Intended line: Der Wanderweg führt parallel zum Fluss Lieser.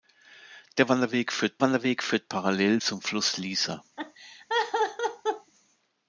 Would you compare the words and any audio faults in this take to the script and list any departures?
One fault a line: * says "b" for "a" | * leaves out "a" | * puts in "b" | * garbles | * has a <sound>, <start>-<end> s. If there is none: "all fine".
* puts in "Wanderweg führt"
* has a laugh, 4.0-5.5 s